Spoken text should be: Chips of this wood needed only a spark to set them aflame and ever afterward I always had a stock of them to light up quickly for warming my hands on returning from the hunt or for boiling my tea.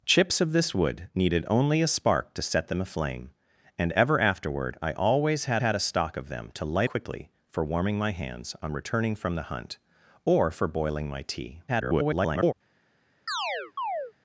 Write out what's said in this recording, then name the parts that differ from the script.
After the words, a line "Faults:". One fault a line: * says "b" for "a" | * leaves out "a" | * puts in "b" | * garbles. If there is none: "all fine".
Chips of this wood needed only a spark to set them aflame and ever afterward I always had had a stock of them to light quickly for warming my hands on returning from the hunt or for boiling my tea. [garbled]
Faults:
* puts in "had"
* leaves out "up"
* garbles